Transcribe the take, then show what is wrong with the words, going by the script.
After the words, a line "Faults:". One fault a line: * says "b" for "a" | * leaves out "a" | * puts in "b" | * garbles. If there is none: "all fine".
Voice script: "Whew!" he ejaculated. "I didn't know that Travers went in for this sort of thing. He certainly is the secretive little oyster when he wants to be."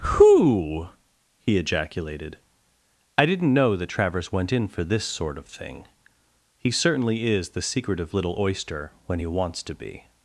"Whew!" he ejaculated. "I didn't know that Travers went in for this sort of thing. He certainly is the secretive little oyster when he wants to be."
Faults:
all fine